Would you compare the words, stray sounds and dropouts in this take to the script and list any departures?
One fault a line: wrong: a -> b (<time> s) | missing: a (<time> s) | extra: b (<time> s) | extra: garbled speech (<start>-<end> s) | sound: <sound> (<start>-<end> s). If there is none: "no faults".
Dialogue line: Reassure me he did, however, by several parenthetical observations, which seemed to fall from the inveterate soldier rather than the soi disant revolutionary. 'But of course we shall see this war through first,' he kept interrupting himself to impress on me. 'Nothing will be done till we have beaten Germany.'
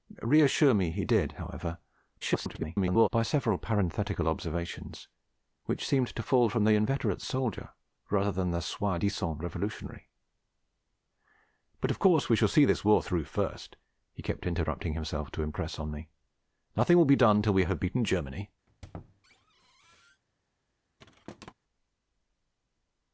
extra: garbled speech (2.2-3.1 s)
sound: squeak (18.7-20.2 s)
sound: thud (21.0-21.5 s)